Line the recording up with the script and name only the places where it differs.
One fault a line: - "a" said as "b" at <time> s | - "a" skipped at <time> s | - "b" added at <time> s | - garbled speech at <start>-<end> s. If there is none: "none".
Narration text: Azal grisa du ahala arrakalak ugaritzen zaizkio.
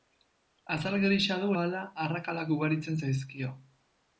none